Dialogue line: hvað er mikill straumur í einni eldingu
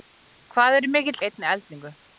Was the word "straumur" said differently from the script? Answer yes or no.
yes